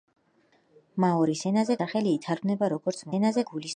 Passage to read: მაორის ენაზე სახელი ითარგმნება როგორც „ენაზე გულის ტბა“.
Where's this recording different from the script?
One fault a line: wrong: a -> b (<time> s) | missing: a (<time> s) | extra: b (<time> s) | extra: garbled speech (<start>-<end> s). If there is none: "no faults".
no faults